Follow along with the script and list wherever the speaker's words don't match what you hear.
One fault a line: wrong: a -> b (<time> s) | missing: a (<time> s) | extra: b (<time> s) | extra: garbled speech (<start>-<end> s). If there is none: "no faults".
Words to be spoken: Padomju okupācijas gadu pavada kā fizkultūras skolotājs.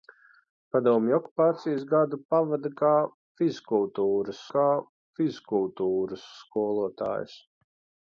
extra: kā fizkultūras (4.5 s)